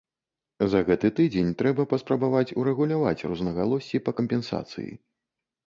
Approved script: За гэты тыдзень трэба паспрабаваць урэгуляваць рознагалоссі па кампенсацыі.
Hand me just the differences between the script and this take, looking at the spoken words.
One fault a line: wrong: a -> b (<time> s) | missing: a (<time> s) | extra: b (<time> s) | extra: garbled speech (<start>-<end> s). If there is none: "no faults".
no faults